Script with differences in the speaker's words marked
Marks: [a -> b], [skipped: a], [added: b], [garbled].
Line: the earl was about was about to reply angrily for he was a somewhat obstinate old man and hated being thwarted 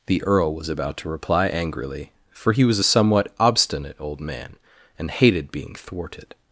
the earl was about [skipped: was about] to reply angrily for he was a somewhat obstinate old man and hated being thwarted